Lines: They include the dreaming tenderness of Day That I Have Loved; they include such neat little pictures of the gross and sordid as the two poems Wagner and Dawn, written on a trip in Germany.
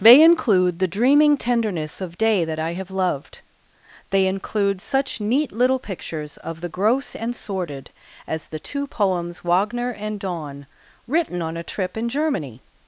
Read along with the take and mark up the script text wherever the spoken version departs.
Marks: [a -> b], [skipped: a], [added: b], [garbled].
They include the dreaming tenderness of Day That I Have Loved; they include such neat little pictures of the gross and sordid as the two poems Wagner and Dawn, written on a trip in Germany.